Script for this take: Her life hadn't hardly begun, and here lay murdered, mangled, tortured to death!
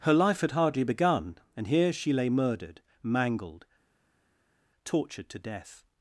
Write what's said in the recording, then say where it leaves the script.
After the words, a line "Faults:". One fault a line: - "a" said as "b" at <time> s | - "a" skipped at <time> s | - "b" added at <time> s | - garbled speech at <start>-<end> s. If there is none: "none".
Her life had hardly begun, and here she lay murdered, mangled, tortured to death!
Faults:
- "hadn't" said as "had" at 0.4 s
- "she" added at 1.9 s